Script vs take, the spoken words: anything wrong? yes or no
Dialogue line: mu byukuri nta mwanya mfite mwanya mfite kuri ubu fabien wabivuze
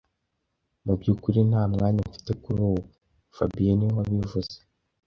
yes